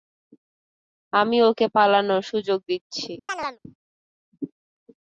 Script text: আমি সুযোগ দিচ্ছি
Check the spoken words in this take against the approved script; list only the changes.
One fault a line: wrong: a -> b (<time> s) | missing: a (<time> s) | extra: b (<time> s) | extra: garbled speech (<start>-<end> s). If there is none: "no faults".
extra: ওকে পালানোর (1.4 s)